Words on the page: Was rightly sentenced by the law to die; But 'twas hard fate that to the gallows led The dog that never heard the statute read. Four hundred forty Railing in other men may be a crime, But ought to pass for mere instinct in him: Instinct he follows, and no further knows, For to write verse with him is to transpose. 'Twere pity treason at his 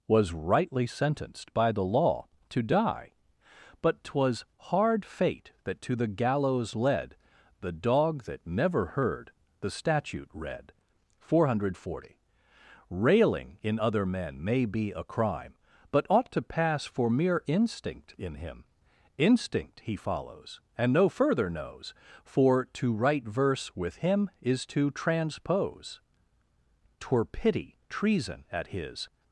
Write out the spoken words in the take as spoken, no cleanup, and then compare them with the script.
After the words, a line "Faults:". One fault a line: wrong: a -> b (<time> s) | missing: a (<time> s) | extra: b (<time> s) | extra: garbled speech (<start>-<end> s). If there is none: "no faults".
Was rightly sentenced by the law to die; But 'twas hard fate that to the gallows led The dog that never heard the statute read. Four hundred forty Railing in other men may be a crime, But ought to pass for mere instinct in him: Instinct he follows, and no further knows, For to write verse with him is to transpose. 'Twere pity treason at his
Faults:
no faults